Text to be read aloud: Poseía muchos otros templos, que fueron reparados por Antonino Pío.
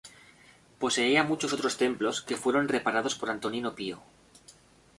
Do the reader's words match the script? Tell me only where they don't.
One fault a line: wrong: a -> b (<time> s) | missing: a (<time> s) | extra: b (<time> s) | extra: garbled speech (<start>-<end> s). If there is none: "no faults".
no faults